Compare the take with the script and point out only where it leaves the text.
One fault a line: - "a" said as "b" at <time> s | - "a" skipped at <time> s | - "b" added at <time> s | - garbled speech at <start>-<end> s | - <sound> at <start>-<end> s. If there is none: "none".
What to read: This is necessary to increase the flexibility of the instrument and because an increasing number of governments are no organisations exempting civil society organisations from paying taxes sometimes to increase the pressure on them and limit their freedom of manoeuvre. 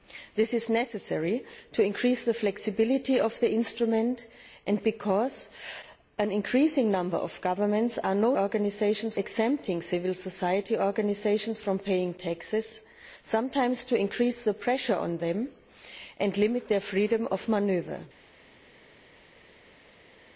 none